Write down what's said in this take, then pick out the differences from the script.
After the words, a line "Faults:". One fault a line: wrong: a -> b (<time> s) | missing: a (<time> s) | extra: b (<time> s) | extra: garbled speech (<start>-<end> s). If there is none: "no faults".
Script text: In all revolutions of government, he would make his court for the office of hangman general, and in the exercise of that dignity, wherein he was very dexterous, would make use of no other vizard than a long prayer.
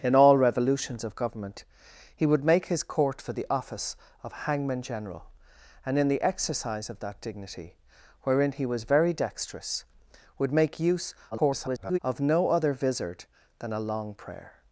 In all revolutions of government, he would make his court for the office of hangman general, and in the exercise of that dignity, wherein he was very dexterous, would make use [garbled] of no other vizard than a long prayer.
Faults:
extra: garbled speech (11.3-12.0 s)